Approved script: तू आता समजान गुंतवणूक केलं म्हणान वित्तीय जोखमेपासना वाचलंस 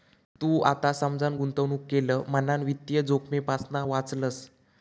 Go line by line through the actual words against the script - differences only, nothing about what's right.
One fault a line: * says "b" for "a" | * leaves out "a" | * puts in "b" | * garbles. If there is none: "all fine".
all fine